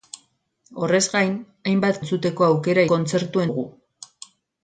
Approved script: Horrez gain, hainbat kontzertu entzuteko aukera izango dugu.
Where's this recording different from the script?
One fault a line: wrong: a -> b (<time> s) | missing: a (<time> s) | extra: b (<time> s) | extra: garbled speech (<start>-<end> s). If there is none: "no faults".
missing: kontzertu (2.0 s)
wrong: izango -> kontzertu (2.9 s)